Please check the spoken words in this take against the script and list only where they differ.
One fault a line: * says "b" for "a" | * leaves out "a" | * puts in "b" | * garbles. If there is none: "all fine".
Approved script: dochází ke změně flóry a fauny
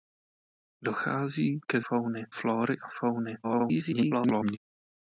* says "fauny" for "změně"
* garbles